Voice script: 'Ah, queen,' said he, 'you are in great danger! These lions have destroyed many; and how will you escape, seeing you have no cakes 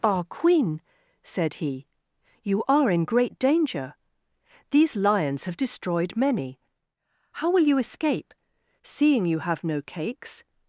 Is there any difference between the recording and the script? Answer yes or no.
yes